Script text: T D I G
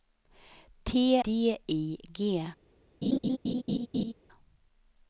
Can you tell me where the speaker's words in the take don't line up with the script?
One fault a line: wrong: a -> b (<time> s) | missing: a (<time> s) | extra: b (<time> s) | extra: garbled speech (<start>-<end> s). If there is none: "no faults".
no faults